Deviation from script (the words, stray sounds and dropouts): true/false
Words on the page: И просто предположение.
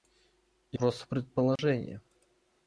true